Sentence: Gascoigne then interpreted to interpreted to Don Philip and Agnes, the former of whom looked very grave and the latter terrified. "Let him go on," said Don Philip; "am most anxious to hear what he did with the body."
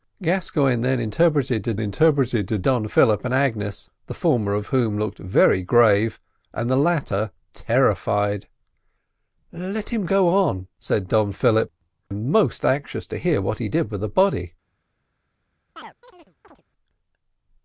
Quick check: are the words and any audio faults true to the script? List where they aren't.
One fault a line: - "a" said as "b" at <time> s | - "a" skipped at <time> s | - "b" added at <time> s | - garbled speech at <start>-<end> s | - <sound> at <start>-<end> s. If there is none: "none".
- chirp at 15.8-16.6 s